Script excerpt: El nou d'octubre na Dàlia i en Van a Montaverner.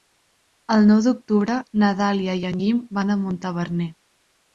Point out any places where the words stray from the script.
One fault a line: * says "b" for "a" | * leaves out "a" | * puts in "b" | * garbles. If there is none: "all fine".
* puts in "Guim"